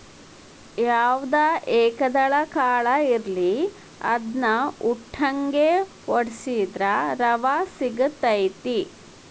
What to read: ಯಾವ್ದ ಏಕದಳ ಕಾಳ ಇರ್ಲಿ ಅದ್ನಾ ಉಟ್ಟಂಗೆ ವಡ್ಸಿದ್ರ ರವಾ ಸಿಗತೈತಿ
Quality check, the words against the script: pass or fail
pass